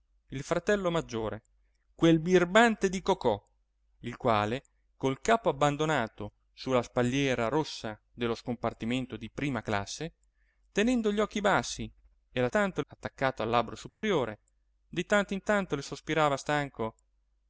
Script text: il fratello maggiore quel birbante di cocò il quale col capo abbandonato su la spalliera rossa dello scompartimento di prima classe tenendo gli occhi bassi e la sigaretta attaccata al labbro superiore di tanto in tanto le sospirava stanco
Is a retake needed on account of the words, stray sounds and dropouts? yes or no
yes